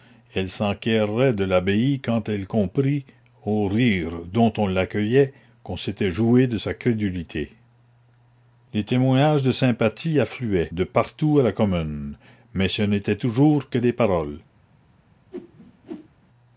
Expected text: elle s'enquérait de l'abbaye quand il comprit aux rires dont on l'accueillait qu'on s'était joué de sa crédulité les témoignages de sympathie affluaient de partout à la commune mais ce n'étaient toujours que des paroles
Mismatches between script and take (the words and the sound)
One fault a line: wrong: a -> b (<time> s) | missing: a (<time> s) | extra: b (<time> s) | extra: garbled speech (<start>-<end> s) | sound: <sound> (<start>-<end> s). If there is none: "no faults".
wrong: il -> elle (2.3 s)
sound: whoosh (15.3-16.1 s)